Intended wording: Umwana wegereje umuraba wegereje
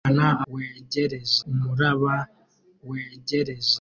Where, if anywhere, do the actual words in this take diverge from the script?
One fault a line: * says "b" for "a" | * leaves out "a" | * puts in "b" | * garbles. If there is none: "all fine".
all fine